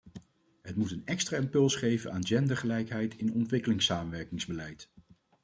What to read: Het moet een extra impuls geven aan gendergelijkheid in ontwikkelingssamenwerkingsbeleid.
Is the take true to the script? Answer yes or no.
yes